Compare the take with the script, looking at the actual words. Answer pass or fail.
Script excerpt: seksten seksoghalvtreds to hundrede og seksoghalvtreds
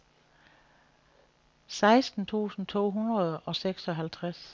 fail